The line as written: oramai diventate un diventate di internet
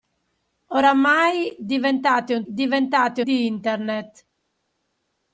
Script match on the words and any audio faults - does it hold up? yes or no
yes